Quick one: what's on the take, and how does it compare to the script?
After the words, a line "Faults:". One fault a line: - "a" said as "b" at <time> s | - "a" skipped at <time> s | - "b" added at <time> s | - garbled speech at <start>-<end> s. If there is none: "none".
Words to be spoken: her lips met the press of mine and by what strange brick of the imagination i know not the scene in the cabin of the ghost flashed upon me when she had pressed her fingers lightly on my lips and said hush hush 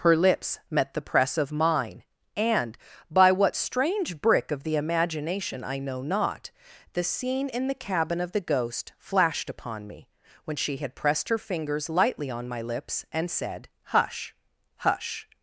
her lips met the press of mine and by what strange brick of the imagination i know not the scene in the cabin of the ghost flashed upon me when she had pressed her fingers lightly on my lips and said hush hush
Faults:
none